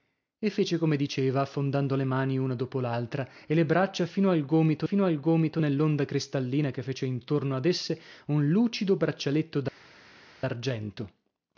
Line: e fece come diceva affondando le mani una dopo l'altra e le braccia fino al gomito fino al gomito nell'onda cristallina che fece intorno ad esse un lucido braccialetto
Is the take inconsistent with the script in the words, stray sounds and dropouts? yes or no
no